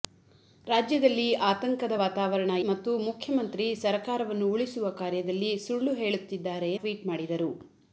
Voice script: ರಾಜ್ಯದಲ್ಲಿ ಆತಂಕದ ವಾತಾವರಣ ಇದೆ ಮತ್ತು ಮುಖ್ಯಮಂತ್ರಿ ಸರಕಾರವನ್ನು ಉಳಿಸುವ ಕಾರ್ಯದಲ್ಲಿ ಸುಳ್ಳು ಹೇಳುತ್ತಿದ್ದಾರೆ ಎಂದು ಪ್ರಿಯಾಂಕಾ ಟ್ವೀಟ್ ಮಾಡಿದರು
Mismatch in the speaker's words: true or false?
true